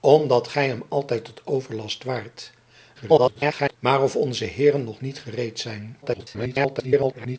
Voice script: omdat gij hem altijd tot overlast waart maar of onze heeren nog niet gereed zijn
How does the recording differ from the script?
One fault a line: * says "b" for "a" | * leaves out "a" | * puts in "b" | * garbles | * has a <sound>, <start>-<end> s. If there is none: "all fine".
* garbles
* garbles